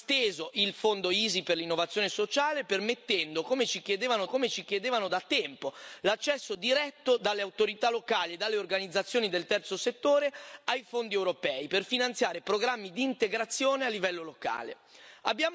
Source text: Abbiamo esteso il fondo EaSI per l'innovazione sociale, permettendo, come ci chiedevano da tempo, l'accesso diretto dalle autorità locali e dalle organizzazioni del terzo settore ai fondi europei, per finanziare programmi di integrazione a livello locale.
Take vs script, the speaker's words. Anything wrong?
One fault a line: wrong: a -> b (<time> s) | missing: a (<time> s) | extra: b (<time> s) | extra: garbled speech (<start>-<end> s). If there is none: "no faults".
extra: come ci chiedevano (4.3 s)